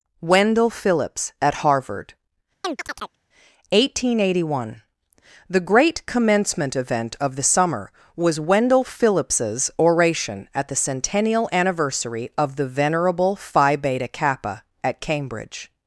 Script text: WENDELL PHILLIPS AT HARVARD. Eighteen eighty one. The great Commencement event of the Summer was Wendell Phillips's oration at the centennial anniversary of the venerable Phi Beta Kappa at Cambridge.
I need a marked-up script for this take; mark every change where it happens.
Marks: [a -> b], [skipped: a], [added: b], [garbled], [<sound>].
WENDELL PHILLIPS AT HARVARD. [chirp] Eighteen eighty one. The great Commencement event of the Summer was Wendell Phillips's oration at the centennial anniversary of the venerable Phi Beta Kappa at Cambridge.